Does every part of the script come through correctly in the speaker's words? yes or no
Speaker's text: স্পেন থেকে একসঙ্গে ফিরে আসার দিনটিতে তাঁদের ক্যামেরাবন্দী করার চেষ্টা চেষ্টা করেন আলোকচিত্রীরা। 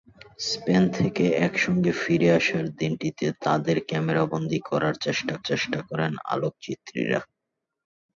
yes